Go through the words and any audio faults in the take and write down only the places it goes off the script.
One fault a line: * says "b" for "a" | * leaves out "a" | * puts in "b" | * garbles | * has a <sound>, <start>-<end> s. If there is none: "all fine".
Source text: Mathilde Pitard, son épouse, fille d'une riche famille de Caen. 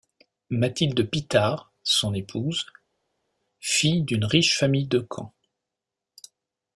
all fine